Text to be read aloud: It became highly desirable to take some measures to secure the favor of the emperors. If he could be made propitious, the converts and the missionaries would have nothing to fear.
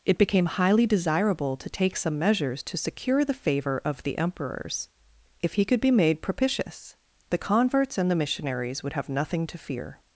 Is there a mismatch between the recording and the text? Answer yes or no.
no